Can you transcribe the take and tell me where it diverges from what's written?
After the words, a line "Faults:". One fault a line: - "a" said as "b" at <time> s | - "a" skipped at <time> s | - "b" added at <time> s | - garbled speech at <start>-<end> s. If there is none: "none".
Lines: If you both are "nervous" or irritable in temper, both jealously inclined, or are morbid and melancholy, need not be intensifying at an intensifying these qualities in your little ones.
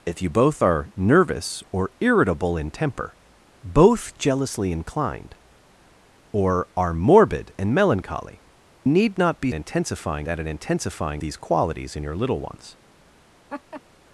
If you both are "nervous" or irritable in temper, both jealously inclined, or are morbid and melancholy, need not be intensifying at an intensifying these qualities in your little ones.
Faults:
none